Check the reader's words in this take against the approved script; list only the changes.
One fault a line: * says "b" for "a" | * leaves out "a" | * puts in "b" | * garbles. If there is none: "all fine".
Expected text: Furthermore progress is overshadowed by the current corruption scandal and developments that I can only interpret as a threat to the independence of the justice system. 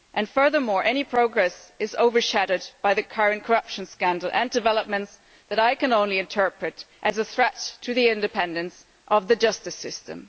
* puts in "any"